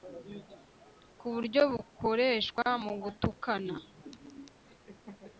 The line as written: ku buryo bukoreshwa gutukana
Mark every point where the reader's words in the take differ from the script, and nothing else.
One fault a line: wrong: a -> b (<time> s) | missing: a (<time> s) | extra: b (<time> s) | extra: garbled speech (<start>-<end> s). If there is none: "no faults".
extra: mu (2.8 s)